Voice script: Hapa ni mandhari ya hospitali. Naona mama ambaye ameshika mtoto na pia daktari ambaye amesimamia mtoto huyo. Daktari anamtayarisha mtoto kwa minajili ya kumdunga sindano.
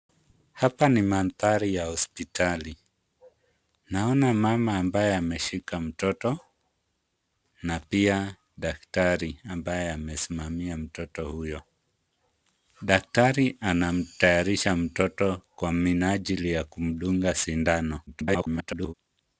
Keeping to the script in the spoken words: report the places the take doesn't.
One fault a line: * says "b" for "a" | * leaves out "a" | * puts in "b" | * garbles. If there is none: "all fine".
* garbles